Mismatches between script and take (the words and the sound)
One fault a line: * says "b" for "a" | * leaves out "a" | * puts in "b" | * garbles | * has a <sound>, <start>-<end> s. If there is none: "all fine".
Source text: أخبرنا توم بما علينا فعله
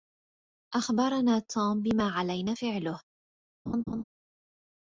* has a laugh, 3.7-4.0 s